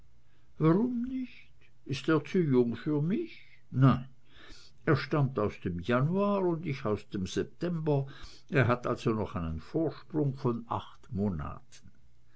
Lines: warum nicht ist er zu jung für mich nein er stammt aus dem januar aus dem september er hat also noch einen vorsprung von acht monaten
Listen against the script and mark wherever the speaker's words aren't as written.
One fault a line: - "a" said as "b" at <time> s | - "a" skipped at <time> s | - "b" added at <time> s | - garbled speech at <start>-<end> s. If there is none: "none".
- "und ich" added at 6.4 s